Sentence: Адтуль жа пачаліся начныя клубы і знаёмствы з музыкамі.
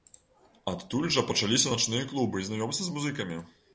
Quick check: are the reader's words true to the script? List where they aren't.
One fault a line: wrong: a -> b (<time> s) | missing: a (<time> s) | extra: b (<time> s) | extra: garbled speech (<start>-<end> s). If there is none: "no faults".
no faults